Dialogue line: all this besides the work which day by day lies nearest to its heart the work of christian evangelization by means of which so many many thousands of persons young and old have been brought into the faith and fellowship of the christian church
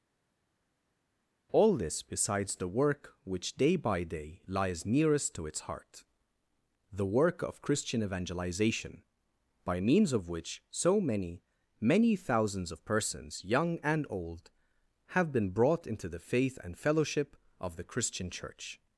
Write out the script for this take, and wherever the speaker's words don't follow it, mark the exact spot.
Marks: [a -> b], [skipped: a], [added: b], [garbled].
all this besides the work which day by day lies nearest to its heart the work of christian evangelization by means of which so many many thousands of persons young and old have been brought into the faith and fellowship of the christian church